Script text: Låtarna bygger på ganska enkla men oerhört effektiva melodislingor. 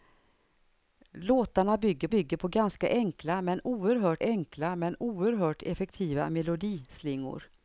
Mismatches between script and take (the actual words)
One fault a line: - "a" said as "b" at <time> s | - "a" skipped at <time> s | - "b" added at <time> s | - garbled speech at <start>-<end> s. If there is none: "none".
- "bygger" added at 2.1 s
- "enkla men oerhört" added at 4.2 s